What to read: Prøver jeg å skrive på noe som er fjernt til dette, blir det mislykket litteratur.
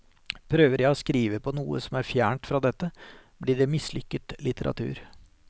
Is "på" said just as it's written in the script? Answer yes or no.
yes